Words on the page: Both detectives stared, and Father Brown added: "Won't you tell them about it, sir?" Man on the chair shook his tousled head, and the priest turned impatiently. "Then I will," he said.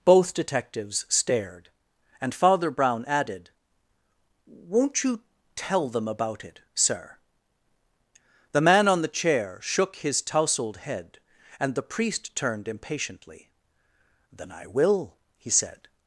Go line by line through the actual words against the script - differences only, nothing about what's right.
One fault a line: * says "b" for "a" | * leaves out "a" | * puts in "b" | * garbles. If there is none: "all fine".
* puts in "The"